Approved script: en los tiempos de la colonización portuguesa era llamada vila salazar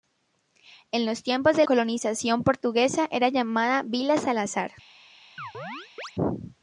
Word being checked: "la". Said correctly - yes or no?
no